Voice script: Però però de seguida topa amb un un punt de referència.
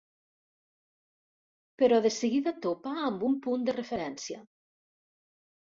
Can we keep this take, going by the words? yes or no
no